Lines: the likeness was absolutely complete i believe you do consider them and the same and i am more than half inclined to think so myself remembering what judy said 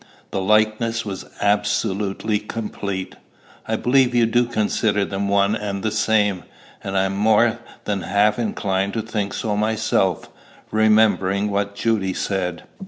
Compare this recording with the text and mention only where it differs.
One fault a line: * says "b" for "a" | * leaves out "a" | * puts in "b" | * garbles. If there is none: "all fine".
* puts in "one"